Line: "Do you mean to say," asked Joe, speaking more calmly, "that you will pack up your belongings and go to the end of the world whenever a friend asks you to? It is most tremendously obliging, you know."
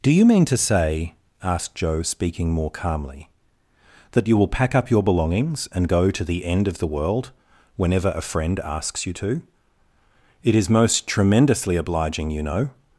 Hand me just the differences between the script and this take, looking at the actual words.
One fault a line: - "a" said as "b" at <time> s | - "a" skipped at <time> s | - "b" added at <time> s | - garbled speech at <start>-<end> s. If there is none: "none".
none